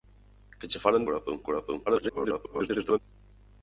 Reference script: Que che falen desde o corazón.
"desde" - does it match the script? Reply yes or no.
no